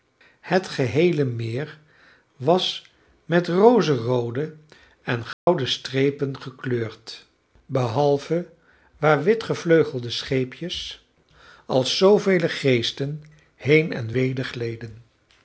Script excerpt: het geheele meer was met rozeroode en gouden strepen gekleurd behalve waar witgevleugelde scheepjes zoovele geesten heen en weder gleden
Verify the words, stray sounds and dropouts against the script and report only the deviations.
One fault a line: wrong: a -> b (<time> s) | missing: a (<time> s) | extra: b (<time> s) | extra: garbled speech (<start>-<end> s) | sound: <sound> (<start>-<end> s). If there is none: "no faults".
sound: dropout (5.3-5.5 s)
extra: als (11.7 s)